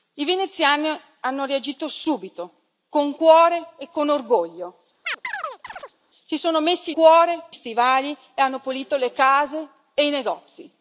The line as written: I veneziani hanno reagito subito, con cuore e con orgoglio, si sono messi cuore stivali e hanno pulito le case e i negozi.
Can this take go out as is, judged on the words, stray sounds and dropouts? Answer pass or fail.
fail